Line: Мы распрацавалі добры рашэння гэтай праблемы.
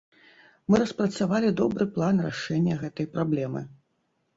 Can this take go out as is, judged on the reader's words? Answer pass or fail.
fail